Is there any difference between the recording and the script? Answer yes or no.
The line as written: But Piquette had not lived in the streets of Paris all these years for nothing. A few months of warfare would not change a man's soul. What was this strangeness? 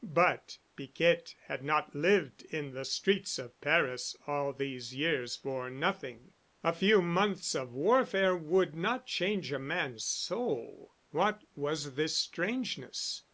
no